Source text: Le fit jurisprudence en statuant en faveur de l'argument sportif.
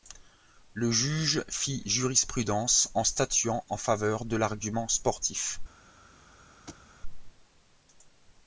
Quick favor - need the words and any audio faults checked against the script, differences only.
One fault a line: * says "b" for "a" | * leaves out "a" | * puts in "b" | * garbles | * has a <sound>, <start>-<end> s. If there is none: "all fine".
* puts in "juge"
* has a thud, 6.7-6.9 s